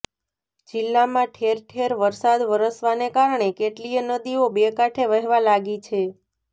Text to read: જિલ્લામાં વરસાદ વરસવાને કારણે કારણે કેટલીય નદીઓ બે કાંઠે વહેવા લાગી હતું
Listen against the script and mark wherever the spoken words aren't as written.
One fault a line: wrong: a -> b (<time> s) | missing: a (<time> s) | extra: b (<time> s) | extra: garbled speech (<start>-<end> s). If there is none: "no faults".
extra: ઠેર ઠેર (1.3 s)
missing: કારણે (3.5 s)
wrong: હતું -> છે (5.8 s)